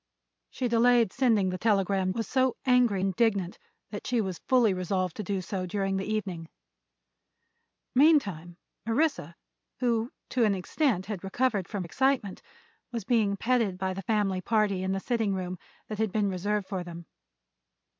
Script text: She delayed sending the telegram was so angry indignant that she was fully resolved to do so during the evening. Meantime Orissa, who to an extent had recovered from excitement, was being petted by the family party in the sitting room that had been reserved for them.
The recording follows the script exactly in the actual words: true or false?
true